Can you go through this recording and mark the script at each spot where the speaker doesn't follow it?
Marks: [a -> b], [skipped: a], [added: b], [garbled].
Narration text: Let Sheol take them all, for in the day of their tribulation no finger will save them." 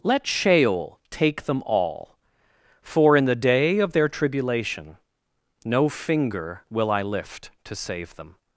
Let Sheol take them all, for in the day of their tribulation no finger will [added: I lift to] save them."